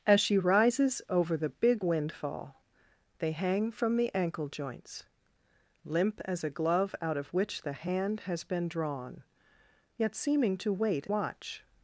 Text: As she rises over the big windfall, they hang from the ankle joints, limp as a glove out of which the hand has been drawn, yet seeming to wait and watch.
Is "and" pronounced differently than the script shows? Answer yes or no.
yes